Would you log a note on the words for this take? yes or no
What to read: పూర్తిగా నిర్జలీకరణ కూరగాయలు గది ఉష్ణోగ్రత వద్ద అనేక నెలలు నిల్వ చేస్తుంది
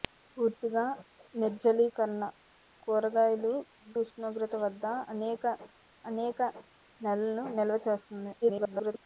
yes